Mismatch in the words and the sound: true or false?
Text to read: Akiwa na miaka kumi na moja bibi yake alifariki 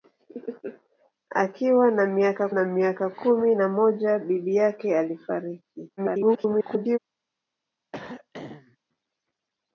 true